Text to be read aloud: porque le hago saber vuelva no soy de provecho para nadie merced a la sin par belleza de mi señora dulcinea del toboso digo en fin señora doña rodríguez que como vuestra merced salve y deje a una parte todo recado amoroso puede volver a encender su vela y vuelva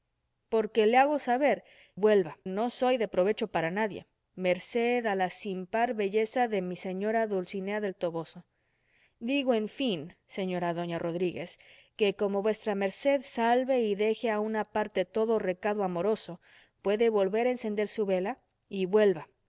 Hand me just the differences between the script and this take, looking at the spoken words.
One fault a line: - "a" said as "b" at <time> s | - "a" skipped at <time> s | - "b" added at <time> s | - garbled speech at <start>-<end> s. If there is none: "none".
none